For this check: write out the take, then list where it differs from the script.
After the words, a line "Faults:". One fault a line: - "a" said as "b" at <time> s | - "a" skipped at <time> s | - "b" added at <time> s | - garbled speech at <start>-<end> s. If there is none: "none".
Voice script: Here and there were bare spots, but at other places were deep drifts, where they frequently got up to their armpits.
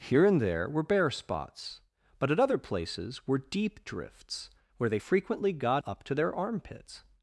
Here and there were bare spots, but at other places were deep drifts, where they frequently got up to their armpits.
Faults:
none